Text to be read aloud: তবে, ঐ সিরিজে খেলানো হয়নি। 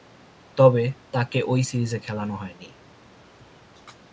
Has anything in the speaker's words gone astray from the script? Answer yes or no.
yes